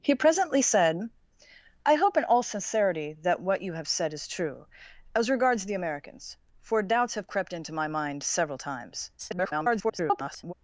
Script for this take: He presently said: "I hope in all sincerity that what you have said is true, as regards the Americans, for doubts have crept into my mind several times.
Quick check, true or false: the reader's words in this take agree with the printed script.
false